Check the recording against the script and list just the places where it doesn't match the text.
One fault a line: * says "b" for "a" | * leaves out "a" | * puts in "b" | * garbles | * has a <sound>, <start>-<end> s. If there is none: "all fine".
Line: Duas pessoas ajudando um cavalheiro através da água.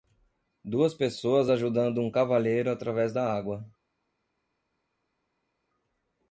all fine